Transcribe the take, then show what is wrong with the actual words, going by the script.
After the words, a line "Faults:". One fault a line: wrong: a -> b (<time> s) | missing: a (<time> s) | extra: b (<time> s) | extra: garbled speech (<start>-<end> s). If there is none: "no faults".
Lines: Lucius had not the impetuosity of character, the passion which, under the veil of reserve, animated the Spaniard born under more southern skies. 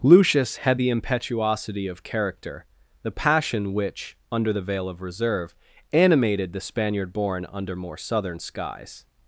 Lucius had the impetuosity of character, the passion which, under the veil of reserve, animated the Spaniard born under more southern skies.
Faults:
missing: not (0.8 s)